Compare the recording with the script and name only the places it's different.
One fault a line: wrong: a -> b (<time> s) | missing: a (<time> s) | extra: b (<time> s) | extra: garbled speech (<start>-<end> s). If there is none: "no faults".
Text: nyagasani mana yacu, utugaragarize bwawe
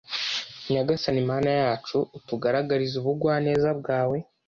extra: ubugwaneza (3.0 s)